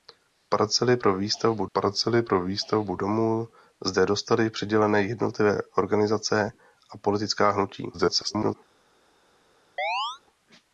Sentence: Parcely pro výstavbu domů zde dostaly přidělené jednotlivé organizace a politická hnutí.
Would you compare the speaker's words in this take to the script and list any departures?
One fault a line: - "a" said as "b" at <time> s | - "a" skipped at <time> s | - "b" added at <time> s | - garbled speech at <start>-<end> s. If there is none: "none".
- "parcely pro výstavbu" added at 1.7 s
- garbled speech at 7.9-8.6 s